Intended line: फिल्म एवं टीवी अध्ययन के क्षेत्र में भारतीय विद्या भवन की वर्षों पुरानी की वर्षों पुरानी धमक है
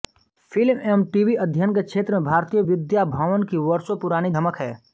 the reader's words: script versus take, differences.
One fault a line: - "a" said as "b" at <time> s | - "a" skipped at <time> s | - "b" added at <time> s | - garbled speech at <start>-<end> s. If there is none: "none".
- "की वर्षों पुरानी" skipped at 4.3 s